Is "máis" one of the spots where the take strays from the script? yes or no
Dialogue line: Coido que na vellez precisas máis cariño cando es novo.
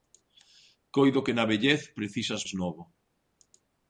yes